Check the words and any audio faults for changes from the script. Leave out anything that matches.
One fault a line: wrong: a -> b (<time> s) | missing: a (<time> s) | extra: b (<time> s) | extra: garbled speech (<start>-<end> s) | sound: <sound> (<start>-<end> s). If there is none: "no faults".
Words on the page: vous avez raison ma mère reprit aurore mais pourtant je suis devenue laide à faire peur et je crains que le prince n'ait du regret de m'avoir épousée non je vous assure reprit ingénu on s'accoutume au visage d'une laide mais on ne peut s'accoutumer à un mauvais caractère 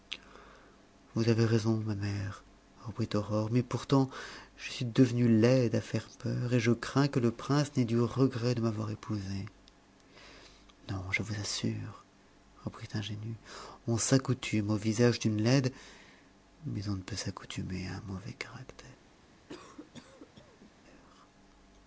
sound: cough (19.5-20.7 s)